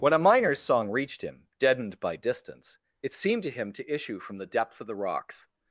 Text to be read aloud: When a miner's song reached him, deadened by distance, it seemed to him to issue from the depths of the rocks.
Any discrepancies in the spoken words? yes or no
no